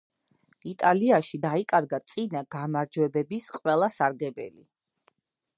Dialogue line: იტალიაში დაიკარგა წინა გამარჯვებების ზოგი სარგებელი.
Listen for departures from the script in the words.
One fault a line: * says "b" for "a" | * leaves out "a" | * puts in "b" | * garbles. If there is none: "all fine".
* says "ყველა" for "ზოგი"